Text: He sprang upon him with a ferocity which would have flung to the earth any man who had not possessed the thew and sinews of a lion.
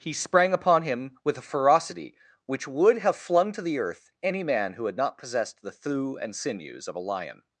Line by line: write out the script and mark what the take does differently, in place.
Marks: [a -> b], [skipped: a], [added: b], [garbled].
He sprang upon him with a ferocity which would have flung to the earth any man who had not possessed the thew and sinews of a lion.